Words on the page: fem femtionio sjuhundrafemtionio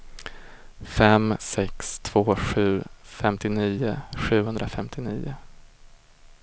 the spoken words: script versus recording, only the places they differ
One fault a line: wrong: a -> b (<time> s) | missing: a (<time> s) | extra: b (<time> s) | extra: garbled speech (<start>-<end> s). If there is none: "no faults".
extra: sex två sju (1.4 s)